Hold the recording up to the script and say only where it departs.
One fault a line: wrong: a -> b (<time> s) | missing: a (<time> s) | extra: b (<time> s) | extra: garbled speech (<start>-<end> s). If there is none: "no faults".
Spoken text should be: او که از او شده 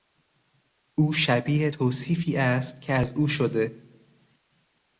extra: شبیه توصیفی است (1.1 s)